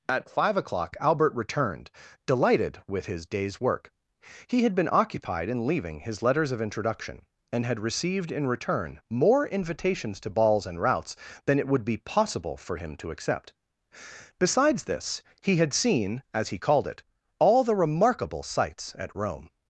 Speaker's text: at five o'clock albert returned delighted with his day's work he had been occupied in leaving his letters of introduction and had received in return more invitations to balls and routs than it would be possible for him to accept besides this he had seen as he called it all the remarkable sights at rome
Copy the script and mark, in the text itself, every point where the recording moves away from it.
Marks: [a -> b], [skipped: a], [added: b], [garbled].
at five o'clock albert returned delighted with his day's work he had been occupied in leaving his letters of introduction and had received in return more invitations to balls and routs than it would be possible for him to accept besides this he had seen as he called it all the remarkable sights at rome